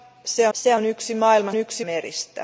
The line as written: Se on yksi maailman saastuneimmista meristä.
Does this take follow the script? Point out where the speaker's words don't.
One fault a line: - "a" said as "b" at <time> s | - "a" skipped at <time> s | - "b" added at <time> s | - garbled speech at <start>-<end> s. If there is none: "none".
- "se" added at 0.5 s
- "saastuneimmista" said as "yksi" at 1.6 s